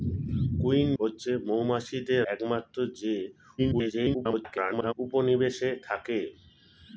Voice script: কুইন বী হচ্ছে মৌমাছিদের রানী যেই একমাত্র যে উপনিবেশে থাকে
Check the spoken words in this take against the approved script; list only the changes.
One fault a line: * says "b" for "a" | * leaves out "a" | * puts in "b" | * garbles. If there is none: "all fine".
* leaves out "বী"
* leaves out "রানী যেই"
* garbles